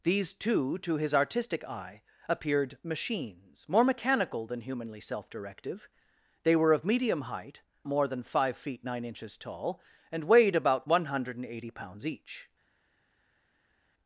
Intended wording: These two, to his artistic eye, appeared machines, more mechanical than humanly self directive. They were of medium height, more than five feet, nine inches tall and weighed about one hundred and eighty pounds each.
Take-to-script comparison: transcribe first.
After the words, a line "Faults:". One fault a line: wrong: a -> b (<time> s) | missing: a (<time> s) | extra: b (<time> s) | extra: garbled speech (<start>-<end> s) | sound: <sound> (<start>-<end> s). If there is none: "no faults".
These two, to his artistic eye, appeared machines, more mechanical than humanly self directive. They were of medium height, more than five feet, nine inches tall and weighed about one hundred and eighty pounds each.
Faults:
no faults